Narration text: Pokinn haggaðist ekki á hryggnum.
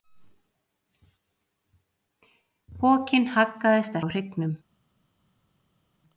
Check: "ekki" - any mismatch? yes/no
yes